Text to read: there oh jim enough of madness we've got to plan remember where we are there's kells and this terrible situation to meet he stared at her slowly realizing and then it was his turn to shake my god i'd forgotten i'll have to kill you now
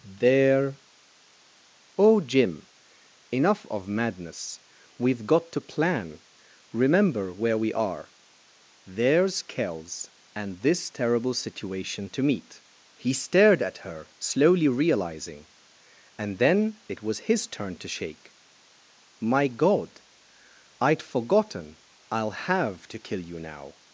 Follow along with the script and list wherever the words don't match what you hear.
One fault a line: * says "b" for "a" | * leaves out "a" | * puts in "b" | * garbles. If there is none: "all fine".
all fine